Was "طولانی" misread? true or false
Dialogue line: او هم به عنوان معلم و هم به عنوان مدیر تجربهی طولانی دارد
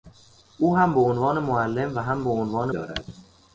true